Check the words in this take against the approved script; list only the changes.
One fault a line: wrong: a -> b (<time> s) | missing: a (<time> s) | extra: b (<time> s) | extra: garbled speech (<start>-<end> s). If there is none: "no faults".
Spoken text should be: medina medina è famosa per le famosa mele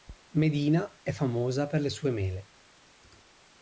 missing: medina (1.0 s)
wrong: famosa -> sue (1.9 s)